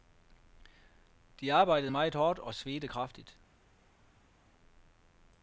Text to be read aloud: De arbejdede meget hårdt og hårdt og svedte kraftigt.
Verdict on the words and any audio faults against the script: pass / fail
fail